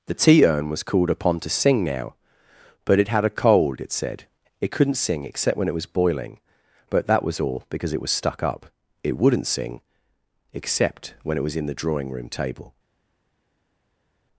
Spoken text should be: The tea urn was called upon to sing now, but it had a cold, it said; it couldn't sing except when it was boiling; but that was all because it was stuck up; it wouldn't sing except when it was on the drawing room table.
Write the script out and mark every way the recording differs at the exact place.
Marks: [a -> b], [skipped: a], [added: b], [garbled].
The tea urn was called upon to sing now, but it had a cold, it said; it couldn't sing except when it was boiling; but that was all because it was stuck up; it wouldn't sing except when it was [on -> in] the drawing room table.